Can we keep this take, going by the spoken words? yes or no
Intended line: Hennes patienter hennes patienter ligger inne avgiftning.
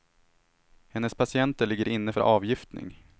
no